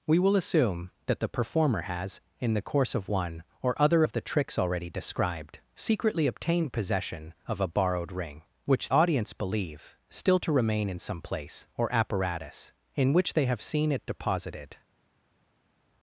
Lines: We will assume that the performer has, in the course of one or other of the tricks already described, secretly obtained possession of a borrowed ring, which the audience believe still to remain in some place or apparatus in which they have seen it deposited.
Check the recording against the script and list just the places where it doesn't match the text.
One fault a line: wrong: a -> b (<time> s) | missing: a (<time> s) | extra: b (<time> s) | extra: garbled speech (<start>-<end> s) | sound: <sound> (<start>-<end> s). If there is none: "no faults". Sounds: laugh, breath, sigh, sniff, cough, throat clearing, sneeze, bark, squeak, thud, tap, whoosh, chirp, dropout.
missing: the (8.9 s)